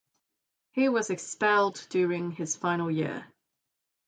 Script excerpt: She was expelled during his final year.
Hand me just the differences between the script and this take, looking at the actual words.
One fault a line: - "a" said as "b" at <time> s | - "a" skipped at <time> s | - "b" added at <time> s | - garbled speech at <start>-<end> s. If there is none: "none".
- "She" said as "He" at 0.7 s